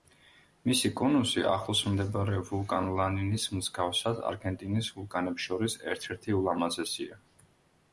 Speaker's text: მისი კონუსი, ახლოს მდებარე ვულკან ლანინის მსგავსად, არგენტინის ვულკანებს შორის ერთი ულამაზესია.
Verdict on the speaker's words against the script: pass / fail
fail